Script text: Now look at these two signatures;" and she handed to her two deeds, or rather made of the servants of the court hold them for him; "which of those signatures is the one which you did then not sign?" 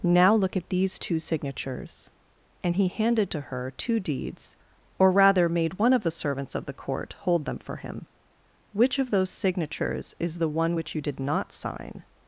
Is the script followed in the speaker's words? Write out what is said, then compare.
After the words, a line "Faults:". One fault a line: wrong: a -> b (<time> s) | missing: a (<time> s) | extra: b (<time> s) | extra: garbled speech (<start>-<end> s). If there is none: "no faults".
Now look at these two signatures;" and he handed to her two deeds, or rather made one of the servants of the court hold them for him; "which of those signatures is the one which you did not sign?"
Faults:
wrong: she -> he (2.8 s)
extra: one (5.8 s)
missing: then (11.2 s)